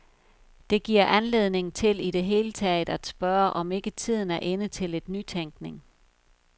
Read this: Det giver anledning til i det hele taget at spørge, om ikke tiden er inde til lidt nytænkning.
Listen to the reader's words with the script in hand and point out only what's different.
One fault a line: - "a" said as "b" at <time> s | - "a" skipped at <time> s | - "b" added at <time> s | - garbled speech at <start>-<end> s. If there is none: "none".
none